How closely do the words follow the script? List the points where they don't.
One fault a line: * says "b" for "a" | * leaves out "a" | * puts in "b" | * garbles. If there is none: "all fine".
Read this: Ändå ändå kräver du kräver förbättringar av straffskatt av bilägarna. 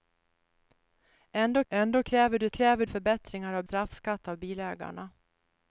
all fine